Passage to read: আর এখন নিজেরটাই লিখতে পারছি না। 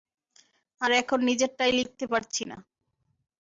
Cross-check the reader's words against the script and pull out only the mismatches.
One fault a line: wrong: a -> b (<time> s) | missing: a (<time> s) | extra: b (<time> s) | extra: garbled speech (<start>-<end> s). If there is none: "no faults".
no faults